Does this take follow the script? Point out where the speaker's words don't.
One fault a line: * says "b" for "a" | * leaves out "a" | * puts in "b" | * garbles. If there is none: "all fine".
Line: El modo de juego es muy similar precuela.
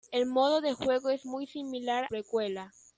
all fine